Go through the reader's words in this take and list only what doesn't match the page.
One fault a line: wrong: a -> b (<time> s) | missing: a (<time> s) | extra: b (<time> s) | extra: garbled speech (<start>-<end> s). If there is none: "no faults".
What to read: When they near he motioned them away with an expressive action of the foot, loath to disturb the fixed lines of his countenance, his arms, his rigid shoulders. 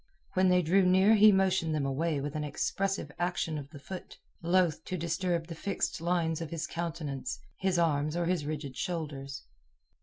extra: drew (0.6 s)
extra: or (8.1 s)